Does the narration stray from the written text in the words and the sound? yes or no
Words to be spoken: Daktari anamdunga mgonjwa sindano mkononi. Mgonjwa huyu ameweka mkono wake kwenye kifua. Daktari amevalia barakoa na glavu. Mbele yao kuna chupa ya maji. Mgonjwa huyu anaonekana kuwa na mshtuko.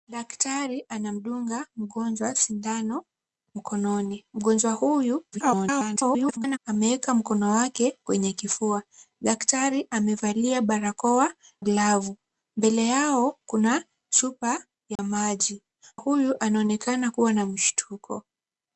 yes